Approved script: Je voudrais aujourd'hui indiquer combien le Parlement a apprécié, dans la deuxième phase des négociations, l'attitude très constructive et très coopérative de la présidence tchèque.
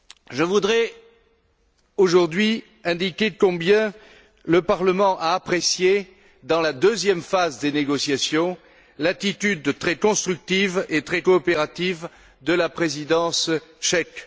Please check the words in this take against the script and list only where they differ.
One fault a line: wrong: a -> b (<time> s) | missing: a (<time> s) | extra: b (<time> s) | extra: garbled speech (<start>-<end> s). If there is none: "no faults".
no faults